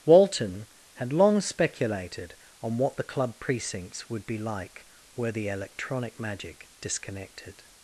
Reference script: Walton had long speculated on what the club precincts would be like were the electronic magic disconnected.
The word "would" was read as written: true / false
true